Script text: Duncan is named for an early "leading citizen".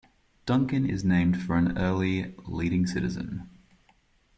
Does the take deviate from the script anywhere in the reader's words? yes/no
no